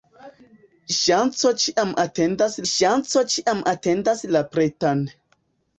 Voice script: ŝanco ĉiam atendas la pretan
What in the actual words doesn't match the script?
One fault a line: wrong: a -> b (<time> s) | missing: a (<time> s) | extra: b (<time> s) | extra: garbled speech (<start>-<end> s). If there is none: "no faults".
extra: ŝanco ĉiam atendas (2.7 s)